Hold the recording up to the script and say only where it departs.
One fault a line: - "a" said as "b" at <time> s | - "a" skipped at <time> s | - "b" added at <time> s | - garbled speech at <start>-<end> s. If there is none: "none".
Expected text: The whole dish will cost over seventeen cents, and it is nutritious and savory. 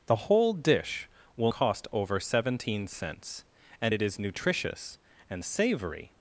none